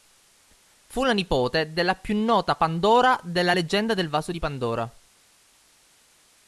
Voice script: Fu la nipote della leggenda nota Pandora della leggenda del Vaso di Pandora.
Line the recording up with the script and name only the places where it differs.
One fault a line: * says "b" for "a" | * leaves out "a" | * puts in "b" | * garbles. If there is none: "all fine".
* says "più" for "leggenda"